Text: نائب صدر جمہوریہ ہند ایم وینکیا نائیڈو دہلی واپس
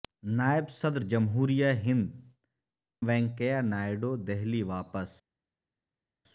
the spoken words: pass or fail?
fail